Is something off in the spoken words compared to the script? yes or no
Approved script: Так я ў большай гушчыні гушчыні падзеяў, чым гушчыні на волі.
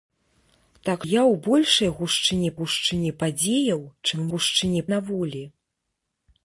no